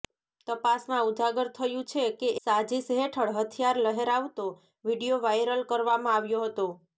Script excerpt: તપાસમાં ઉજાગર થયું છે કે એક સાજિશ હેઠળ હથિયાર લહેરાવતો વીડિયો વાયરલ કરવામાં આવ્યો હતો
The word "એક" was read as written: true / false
false